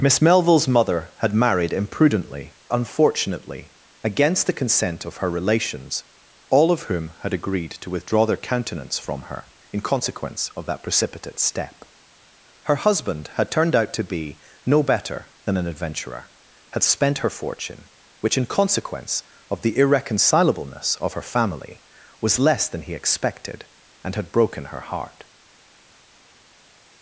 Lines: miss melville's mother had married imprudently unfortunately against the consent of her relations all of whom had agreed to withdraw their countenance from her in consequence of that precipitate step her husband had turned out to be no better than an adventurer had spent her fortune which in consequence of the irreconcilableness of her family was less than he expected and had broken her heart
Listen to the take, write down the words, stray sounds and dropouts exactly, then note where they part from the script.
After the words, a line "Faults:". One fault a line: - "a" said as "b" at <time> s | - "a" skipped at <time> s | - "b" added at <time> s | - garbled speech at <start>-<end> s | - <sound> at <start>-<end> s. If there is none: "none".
miss melville's mother had married imprudently unfortunately against the consent of her relations all of whom had agreed to withdraw their countenance from her in consequence of that precipitate step her husband had turned out to be no better than an adventurer had spent her fortune which in consequence of the irreconcilableness of her family was less than he expected and had broken her heart
Faults:
none